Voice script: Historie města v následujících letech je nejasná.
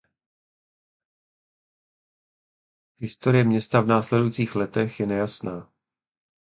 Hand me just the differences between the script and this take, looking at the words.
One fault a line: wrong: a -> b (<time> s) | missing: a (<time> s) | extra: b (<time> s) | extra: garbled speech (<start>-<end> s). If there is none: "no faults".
no faults